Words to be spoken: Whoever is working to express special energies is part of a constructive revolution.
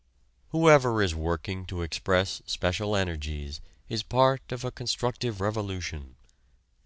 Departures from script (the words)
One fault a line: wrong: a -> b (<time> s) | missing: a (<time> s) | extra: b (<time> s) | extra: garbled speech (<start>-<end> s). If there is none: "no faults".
no faults